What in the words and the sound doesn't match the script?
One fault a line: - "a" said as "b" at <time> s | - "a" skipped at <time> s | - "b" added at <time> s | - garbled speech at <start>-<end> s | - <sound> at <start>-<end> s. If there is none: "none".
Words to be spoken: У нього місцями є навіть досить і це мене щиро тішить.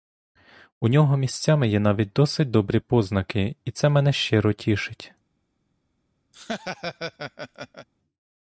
- "добрі познаки" added at 2.5 s
- laugh at 6.3-7.9 s